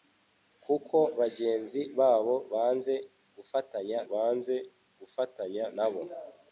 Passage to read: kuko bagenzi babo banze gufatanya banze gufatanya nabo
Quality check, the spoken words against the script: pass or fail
pass